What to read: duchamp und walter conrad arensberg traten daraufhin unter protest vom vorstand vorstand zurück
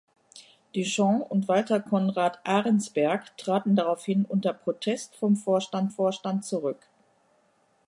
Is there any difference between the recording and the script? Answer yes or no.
no